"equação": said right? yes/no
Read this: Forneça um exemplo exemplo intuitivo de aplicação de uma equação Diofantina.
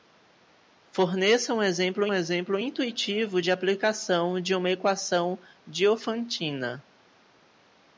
yes